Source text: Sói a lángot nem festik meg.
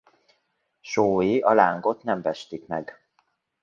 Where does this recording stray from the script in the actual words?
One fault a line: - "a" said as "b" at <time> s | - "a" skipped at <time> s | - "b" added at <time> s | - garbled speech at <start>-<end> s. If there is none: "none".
none